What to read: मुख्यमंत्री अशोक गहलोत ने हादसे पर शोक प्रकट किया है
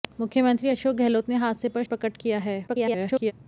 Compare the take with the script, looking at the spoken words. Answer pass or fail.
fail